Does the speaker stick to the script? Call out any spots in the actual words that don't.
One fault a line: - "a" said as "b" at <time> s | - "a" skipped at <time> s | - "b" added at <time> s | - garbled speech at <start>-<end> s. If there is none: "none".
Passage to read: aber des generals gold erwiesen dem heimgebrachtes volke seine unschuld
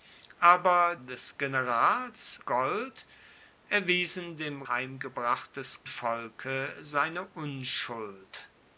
none